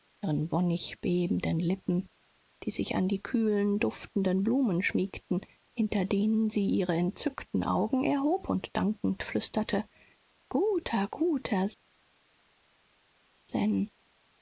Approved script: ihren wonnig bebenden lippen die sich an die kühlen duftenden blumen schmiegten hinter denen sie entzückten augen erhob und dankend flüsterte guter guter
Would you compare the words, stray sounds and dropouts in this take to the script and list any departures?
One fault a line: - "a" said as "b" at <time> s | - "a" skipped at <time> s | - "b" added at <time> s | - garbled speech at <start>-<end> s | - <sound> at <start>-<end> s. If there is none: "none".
- "ihre" added at 6.7 s